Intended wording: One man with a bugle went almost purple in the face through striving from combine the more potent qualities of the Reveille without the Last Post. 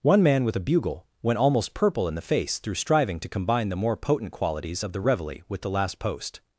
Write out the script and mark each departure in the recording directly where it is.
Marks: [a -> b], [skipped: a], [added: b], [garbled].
One man with a bugle went almost purple in the face through striving [from -> to] combine the more potent qualities of the Reveille [without -> with] the Last Post.